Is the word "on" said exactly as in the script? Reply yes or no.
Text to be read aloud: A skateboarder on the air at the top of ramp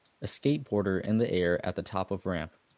no